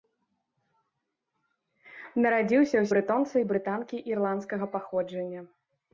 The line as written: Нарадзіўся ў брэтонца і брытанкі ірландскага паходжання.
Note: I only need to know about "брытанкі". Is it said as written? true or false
true